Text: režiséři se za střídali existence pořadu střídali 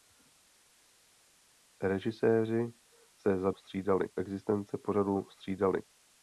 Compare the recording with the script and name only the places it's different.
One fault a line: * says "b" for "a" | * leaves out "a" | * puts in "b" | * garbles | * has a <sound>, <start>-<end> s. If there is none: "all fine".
all fine